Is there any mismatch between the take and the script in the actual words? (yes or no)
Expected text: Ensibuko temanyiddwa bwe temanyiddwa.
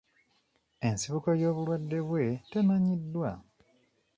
yes